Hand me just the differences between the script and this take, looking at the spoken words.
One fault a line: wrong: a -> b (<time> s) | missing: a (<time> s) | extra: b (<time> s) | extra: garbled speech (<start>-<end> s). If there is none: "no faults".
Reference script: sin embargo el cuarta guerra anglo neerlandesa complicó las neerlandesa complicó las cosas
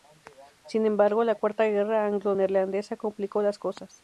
wrong: el -> la (1.2 s)
missing: neerlandesa complicó las (3.6 s)